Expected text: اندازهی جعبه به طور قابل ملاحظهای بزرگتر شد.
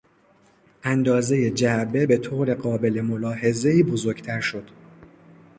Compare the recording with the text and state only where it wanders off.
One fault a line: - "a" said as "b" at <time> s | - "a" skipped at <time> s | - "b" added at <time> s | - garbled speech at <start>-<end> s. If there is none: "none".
none